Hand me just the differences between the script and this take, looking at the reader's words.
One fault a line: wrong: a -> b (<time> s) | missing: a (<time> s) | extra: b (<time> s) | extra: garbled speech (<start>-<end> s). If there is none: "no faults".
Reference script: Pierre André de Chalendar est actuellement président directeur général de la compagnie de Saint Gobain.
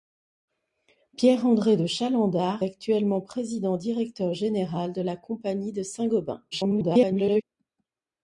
missing: est (2.6 s)
extra: garbled speech (6.5-7.4 s)